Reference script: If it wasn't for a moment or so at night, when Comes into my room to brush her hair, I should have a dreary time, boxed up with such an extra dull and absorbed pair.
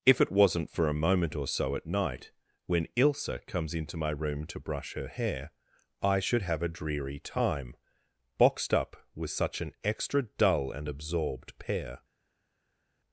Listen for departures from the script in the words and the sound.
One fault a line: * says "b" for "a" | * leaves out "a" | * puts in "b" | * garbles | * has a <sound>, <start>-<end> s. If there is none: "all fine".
* puts in "Ilsa"